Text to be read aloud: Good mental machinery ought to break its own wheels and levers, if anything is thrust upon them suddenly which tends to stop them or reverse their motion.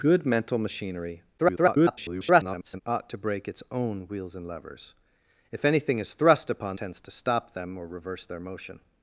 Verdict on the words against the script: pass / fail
fail